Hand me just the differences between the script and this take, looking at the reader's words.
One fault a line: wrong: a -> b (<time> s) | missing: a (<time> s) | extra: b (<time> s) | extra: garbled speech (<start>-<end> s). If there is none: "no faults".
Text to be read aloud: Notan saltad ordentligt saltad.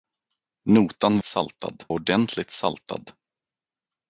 no faults